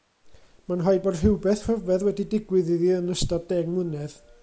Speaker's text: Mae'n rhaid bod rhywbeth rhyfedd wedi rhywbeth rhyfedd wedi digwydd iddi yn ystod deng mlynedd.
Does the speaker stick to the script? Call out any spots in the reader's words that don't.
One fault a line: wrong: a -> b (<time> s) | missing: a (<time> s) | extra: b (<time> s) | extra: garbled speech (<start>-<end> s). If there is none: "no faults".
missing: rhywbeth rhyfedd wedi (2.3 s)